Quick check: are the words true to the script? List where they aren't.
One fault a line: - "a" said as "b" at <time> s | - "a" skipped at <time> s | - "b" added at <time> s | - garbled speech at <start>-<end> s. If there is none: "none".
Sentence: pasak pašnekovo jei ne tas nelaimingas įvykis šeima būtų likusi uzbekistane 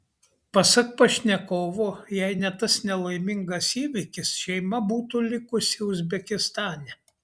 none